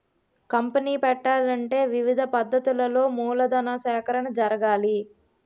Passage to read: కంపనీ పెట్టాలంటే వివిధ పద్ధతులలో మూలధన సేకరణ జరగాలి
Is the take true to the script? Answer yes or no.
yes